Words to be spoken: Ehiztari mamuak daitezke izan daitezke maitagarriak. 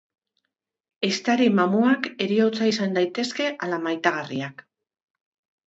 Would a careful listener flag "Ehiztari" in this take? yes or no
no